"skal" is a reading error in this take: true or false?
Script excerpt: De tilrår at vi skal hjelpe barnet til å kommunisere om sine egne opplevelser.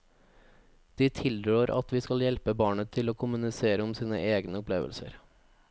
false